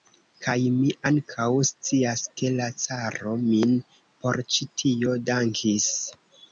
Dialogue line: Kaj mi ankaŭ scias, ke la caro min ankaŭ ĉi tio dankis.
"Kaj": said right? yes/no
yes